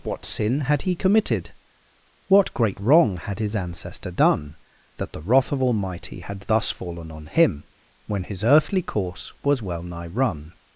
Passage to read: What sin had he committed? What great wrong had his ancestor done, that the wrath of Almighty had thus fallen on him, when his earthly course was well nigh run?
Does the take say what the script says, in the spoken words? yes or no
yes